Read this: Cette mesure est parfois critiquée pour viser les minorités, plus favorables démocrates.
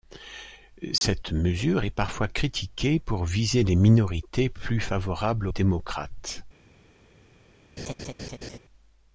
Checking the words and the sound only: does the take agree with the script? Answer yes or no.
no